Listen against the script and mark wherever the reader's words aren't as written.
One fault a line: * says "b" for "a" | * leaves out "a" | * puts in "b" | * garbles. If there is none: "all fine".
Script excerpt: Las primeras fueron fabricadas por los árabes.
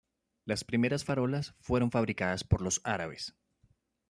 * puts in "farolas"